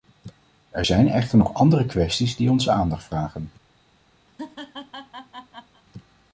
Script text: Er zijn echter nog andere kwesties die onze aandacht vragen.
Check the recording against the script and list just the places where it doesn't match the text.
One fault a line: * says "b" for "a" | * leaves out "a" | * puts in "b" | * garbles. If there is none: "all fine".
all fine